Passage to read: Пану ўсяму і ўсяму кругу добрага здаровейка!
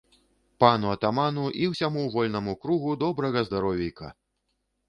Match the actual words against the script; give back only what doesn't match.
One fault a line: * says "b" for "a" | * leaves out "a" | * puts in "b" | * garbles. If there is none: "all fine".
* says "атаману" for "ўсяму"
* puts in "вольнаму"